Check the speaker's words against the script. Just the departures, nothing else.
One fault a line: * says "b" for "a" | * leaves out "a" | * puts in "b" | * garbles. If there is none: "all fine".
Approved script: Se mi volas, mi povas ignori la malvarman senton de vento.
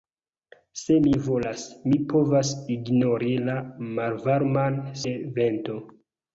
* leaves out "senton"